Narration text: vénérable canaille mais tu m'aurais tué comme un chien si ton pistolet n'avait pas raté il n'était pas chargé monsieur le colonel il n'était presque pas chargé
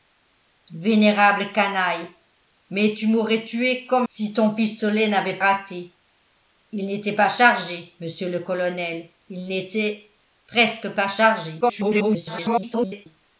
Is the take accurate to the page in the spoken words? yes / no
no